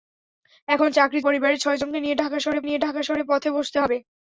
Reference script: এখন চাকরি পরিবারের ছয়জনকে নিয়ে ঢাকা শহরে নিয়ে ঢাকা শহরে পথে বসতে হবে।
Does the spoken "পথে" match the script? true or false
true